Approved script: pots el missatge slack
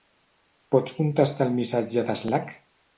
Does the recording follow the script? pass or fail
fail